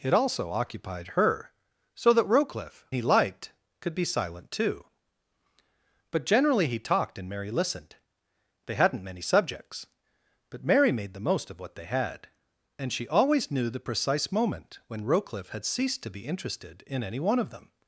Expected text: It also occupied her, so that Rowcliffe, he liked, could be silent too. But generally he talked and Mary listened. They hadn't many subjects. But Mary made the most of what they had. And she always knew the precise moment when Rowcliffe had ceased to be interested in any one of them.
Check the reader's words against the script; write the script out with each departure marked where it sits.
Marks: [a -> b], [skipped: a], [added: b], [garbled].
It also occupied her, so that Rowcliffe, he liked, could be silent too. But generally he talked and Mary listened. They hadn't many subjects. But Mary made the most of what they had. And she always knew the precise moment when Rowcliffe had ceased to be interested in any one of them.